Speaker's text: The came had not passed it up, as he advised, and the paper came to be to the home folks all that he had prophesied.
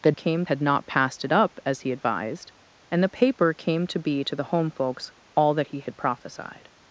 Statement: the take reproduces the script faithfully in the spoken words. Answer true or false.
true